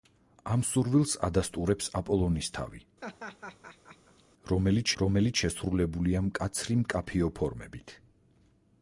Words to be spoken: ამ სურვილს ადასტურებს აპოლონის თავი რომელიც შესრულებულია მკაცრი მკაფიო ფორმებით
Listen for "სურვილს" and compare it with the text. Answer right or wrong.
right